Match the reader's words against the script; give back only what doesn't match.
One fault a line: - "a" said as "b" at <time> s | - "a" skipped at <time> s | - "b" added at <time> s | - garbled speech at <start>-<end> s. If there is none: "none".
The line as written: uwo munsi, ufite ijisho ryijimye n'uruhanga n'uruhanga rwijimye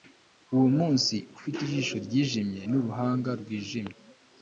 - "n'uruhanga" skipped at 3.3 s